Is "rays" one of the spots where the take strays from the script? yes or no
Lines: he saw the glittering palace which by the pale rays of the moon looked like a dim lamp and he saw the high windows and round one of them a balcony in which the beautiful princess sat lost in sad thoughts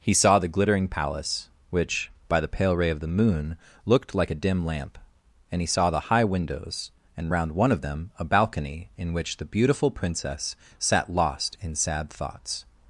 yes